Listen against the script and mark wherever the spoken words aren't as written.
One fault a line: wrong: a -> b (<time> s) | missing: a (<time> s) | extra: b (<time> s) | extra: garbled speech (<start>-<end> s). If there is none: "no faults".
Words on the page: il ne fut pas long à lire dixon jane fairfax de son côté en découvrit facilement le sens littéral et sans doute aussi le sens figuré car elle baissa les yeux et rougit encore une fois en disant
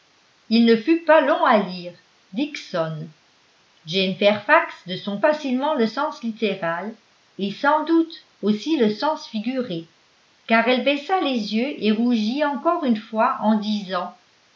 missing: côté en découvrit (5.2 s)